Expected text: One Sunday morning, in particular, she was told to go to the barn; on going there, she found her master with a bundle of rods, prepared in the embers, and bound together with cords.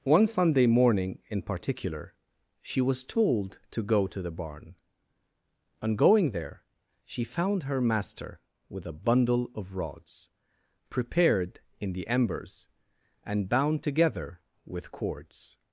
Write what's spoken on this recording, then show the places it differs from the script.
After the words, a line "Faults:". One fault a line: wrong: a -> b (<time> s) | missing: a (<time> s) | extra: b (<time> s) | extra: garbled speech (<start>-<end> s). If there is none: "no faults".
One Sunday morning, in particular, she was told to go to the barn; on going there, she found her master with a bundle of rods, prepared in the embers, and bound together with cords.
Faults:
no faults